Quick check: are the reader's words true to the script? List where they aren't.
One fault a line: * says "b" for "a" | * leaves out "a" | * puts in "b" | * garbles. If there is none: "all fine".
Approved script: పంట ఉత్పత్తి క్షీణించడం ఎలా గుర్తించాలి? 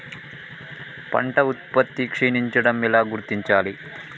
all fine